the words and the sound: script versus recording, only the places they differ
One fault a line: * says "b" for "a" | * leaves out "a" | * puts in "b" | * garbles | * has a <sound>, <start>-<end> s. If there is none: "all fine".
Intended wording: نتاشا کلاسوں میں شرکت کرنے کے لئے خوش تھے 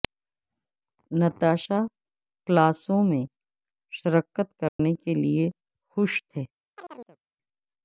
* has a dropout, 4.7-4.8 s
* has a chirp, 6.7-7.2 s